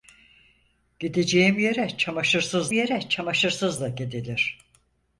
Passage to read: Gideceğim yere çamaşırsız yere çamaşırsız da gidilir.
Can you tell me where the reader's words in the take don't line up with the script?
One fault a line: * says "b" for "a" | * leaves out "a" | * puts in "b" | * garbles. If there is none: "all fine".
all fine